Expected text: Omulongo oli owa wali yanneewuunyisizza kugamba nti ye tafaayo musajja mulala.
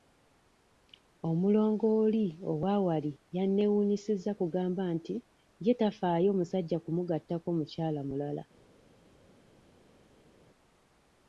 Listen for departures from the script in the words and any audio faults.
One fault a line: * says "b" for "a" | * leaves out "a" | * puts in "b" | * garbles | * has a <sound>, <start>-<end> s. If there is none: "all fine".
* puts in "kumugattako mukyala"